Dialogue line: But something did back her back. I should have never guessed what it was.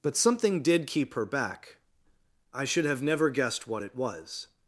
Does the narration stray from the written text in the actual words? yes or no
yes